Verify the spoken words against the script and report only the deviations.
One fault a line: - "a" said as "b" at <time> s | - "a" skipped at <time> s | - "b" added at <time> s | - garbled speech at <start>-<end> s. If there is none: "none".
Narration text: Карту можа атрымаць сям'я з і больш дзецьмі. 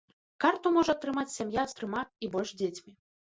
- "трыма" added at 1.8 s